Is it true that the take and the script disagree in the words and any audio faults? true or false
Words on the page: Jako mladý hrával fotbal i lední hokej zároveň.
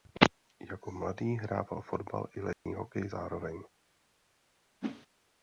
true